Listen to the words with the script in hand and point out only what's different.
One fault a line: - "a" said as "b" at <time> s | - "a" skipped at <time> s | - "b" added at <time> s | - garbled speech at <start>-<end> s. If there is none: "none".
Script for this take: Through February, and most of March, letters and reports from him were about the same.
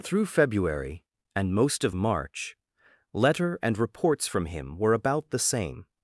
- "letters" said as "letter" at 3.1 s